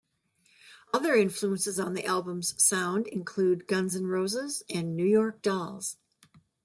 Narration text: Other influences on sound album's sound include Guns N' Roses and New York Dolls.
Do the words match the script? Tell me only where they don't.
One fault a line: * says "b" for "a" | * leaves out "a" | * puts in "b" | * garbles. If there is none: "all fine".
* says "the" for "sound"